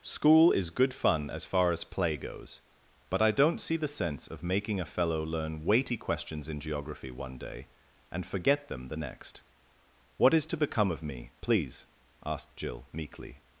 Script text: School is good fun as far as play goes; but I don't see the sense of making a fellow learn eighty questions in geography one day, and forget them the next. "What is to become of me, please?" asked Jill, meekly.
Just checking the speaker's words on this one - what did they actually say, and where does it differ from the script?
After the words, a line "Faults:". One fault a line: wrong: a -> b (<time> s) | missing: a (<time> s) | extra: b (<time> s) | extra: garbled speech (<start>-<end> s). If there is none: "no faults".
School is good fun as far as play goes; but I don't see the sense of making a fellow learn weighty questions in geography one day, and forget them the next. "What is to become of me, please?" asked Jill, meekly.
Faults:
wrong: eighty -> weighty (5.6 s)